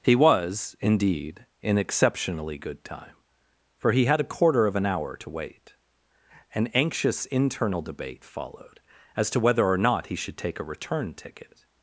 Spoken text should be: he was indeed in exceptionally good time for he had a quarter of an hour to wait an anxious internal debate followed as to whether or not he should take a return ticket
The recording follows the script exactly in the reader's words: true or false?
true